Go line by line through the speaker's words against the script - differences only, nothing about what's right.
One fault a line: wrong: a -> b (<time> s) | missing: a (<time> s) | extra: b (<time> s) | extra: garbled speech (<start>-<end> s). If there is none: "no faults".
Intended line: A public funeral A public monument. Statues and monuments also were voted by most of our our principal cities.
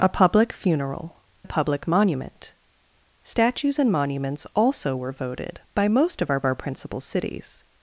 no faults